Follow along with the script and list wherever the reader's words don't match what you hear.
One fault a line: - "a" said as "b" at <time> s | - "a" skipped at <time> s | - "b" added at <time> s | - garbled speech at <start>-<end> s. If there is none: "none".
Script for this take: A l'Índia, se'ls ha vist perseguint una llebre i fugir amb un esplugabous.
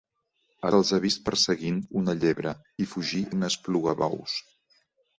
- "l'Índia" skipped at 0.7 s
- "amb" skipped at 3.2 s